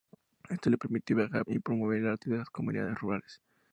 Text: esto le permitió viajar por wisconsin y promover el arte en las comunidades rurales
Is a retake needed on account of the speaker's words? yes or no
yes